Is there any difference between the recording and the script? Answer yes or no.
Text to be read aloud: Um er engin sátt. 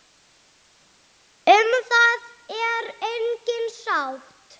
yes